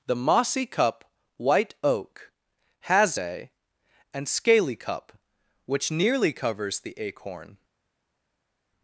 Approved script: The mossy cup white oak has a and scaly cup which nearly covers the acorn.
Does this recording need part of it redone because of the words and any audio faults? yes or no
no